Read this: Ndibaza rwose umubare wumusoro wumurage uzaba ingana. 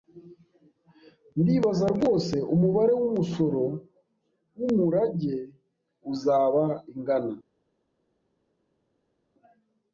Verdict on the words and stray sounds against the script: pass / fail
pass